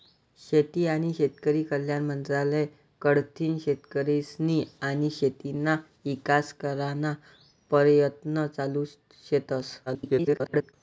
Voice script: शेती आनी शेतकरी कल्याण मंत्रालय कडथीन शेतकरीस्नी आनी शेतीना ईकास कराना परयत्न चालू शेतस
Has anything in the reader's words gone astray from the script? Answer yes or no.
yes